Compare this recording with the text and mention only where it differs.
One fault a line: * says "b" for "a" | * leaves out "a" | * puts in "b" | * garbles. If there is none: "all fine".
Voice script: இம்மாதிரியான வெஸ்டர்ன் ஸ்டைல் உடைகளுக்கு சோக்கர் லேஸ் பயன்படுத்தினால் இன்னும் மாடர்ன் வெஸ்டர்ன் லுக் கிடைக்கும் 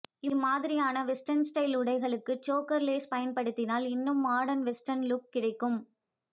all fine